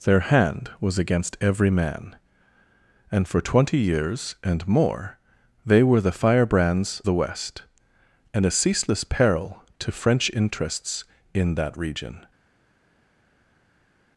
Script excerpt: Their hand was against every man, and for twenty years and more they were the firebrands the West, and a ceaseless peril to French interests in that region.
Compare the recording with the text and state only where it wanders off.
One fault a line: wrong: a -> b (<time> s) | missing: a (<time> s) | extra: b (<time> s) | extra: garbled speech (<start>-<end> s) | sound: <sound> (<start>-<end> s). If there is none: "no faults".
no faults